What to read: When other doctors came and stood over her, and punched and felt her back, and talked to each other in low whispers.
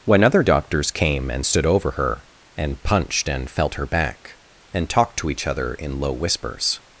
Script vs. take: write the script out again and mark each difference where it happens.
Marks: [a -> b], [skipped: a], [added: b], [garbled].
When other doctors came and stood over her, and punched and felt her back, and talked to each other in low whispers.